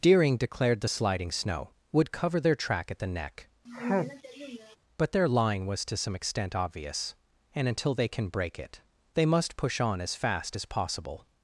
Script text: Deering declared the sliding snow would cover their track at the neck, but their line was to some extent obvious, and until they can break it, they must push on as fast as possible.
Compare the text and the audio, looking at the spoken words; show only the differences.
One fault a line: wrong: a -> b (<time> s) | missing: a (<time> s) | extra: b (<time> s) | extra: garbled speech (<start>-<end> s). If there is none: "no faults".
no faults